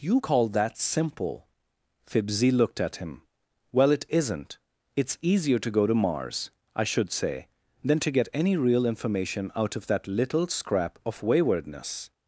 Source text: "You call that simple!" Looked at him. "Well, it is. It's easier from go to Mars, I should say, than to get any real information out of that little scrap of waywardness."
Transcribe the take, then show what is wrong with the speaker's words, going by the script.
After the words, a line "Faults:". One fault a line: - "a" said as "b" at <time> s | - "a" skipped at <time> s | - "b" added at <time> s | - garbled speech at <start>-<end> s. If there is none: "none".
"You call that simple!" Fibsy looked at him. "Well, it isn't. It's easier to go to Mars, I should say, than to get any real information out of that little scrap of waywardness."
Faults:
- "Fibsy" added at 2.1 s
- "is" said as "isn't" at 4.1 s
- "from" said as "to" at 5.6 s